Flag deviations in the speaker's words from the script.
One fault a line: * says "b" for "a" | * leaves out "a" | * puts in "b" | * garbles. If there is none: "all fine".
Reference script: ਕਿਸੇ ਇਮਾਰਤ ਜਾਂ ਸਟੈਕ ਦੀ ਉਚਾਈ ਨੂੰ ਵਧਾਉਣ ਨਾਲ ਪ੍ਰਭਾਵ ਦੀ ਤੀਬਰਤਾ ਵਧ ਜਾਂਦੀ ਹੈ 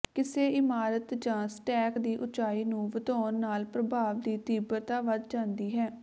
all fine